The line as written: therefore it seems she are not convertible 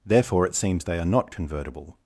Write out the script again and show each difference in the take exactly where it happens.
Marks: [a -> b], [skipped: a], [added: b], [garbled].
therefore it seems [she -> they] are not convertible